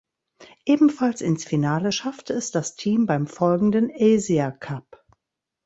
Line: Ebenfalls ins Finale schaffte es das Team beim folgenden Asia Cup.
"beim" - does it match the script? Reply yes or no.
yes